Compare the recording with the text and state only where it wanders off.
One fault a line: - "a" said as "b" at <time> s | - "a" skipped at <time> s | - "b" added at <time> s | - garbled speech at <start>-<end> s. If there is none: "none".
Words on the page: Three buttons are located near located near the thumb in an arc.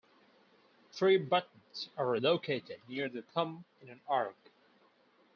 - "located near" skipped at 3.1 s